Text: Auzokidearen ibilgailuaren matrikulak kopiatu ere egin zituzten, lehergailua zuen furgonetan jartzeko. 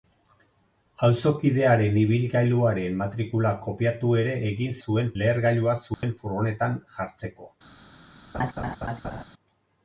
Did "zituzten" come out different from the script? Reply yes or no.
yes